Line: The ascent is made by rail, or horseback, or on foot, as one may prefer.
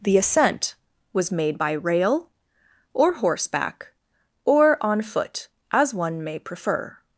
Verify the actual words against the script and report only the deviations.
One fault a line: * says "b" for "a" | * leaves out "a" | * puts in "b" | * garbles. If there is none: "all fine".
* says "was" for "is"